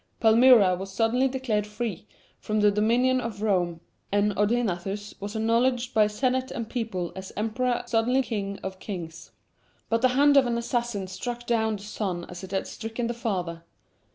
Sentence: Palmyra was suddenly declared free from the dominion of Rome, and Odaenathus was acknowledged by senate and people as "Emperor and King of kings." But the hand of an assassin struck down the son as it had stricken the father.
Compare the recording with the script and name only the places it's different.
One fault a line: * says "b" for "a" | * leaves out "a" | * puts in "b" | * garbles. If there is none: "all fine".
* says "suddenly" for "and"